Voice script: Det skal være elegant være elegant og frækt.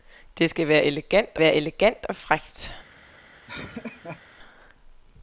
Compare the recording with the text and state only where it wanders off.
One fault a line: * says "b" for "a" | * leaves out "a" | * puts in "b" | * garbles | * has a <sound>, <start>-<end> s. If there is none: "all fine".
* has a laugh, 3.5-4.2 s